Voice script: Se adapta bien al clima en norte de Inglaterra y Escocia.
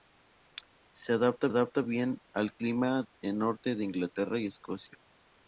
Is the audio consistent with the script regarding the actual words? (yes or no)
no